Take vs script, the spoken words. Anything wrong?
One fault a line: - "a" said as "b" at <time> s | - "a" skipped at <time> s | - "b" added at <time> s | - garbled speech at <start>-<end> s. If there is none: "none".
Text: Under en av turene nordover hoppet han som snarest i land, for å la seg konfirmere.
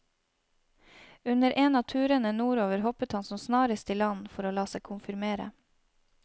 none